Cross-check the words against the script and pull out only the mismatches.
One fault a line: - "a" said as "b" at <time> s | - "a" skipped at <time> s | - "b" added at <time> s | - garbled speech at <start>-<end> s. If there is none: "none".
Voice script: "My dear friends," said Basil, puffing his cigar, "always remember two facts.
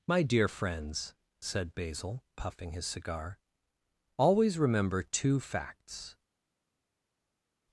none